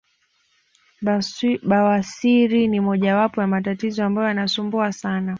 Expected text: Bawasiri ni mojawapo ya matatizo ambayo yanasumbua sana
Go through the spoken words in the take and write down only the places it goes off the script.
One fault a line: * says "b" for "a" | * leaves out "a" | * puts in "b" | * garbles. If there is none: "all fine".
all fine